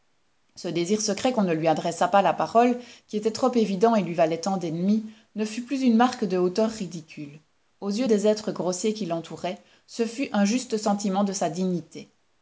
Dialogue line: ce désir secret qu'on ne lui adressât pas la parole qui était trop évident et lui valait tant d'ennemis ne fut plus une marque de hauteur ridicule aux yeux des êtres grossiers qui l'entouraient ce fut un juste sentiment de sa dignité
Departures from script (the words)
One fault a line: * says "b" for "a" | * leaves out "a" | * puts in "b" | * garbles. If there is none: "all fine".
all fine